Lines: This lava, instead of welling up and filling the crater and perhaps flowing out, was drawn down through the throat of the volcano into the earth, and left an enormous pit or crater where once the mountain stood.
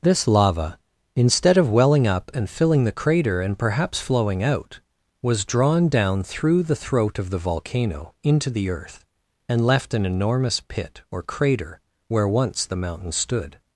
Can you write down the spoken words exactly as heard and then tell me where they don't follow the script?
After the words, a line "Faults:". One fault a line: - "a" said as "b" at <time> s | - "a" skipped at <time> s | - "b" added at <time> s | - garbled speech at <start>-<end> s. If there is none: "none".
This lava, instead of welling up and filling the crater and perhaps flowing out, was drawn down through the throat of the volcano into the earth, and left an enormous pit or crater where once the mountain stood.
Faults:
none